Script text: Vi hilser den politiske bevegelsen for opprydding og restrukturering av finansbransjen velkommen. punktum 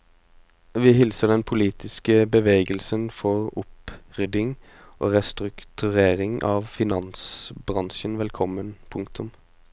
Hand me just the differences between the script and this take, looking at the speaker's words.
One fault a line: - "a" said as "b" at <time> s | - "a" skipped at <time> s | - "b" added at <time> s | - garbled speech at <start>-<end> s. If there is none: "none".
none